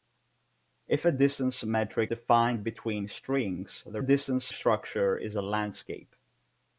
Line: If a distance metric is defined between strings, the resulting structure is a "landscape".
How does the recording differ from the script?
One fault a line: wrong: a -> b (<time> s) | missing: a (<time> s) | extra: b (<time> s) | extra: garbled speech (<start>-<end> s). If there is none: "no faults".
missing: is (2.1 s)
wrong: resulting -> distance (4.0 s)